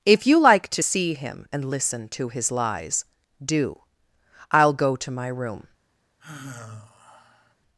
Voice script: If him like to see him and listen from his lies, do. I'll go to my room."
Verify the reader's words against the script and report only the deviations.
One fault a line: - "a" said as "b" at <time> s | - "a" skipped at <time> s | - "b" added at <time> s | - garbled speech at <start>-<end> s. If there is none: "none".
- "him" said as "you" at 0.2 s
- "from" said as "to" at 2.1 s